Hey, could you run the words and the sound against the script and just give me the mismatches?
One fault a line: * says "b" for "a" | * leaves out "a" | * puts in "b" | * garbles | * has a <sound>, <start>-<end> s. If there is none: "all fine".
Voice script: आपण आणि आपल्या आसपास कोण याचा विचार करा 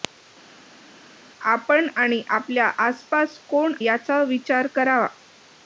all fine